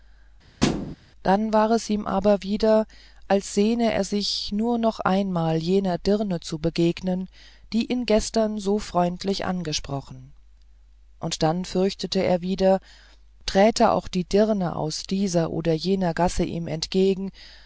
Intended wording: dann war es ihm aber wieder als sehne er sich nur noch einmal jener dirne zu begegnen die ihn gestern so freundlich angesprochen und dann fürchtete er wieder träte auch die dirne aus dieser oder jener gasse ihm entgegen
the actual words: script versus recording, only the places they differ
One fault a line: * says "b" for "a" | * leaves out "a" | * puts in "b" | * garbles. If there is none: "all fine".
all fine